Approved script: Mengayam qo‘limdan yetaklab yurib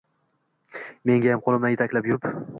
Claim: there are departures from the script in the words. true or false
false